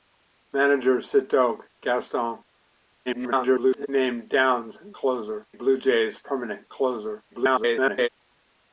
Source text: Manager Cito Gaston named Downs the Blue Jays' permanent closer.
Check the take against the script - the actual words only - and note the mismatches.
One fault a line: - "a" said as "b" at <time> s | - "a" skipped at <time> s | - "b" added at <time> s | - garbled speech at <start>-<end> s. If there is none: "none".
- garbled speech at 3.1-3.9 s
- "the" said as "closer" at 4.9 s
- garbled speech at 7.3-8.1 s